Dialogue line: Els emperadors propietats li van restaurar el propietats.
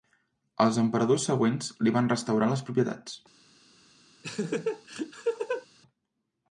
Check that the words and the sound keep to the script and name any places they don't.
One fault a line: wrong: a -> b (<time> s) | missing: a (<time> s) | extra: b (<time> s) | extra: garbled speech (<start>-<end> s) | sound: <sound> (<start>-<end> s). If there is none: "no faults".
wrong: propietats -> següents (1.3 s)
wrong: el -> les (2.5 s)
sound: laugh (4.2-5.7 s)